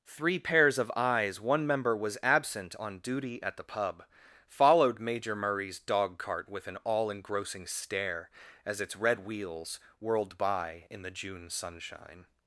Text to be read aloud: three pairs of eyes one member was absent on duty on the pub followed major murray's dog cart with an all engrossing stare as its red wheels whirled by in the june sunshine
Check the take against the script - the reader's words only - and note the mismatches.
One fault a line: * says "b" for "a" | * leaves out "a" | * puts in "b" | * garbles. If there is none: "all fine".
* says "at" for "on"